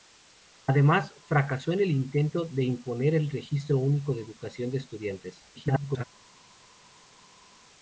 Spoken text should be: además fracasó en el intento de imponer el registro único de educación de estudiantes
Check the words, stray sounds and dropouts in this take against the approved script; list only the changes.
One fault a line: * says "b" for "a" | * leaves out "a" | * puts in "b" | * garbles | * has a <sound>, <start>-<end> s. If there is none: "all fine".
* garbles